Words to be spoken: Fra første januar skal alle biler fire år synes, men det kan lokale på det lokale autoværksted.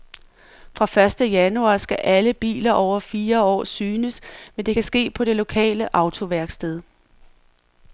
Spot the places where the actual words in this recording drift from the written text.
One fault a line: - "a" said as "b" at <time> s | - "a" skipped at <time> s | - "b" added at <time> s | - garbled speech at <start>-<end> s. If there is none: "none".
- "over" added at 2.7 s
- "lokale" said as "ske" at 4.8 s